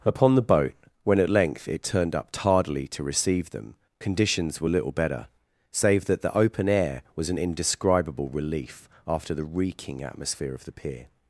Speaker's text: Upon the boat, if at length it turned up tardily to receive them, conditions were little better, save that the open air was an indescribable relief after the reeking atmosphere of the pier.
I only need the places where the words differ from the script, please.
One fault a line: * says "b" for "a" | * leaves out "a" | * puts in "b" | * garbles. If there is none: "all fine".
* says "when" for "if"